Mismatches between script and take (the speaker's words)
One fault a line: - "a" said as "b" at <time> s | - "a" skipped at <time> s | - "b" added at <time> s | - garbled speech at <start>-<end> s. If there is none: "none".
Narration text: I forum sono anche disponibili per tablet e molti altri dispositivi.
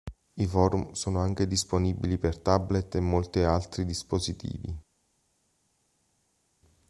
none